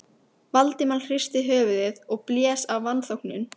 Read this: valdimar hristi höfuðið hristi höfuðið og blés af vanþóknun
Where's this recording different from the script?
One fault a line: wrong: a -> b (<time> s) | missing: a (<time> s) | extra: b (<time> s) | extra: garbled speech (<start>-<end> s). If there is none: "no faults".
missing: hristi höfuðið (2.0 s)